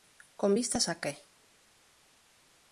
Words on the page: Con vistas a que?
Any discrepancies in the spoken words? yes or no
no